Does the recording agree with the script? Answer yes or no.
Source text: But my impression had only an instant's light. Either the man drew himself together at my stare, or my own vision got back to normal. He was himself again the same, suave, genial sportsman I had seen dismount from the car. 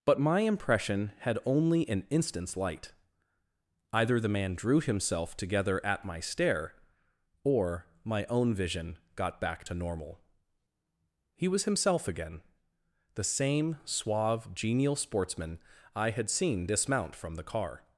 yes